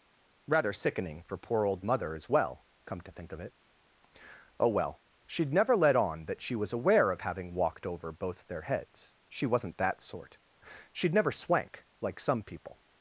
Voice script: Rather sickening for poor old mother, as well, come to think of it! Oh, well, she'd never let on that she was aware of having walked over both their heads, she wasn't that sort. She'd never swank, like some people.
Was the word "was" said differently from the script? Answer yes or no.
no